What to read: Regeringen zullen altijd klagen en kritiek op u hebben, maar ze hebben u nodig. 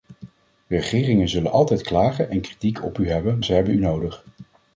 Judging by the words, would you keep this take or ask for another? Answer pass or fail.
fail